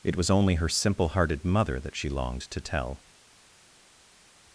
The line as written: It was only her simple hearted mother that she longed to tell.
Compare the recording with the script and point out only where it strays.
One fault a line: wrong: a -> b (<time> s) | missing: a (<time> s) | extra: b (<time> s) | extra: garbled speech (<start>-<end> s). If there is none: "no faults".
no faults